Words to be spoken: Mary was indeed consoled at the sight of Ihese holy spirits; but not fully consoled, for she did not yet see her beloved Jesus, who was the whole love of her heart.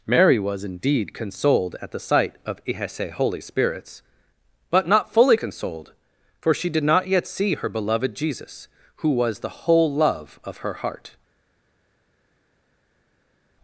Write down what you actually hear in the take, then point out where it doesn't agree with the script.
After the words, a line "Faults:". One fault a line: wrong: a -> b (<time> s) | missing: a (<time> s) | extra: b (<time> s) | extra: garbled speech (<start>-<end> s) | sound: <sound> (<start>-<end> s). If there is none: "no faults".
Mary was indeed consoled at the sight of Ihese holy spirits; but not fully consoled, for she did not yet see her beloved Jesus, who was the whole love of her heart.
Faults:
no faults